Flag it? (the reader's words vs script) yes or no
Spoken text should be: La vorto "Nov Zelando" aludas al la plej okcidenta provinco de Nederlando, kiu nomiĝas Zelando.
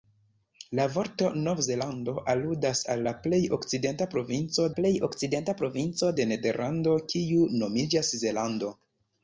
yes